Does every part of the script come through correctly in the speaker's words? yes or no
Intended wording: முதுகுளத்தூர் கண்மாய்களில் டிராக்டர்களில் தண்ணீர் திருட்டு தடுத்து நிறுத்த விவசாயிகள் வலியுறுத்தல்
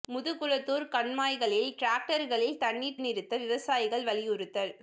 no